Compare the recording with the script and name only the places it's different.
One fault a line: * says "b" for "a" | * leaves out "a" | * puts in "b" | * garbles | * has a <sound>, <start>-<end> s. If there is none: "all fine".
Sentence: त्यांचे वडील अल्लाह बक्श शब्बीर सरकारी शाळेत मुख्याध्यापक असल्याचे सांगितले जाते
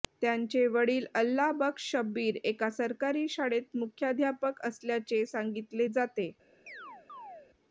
* puts in "एका"
* has a chirp, 6.7-7.5 s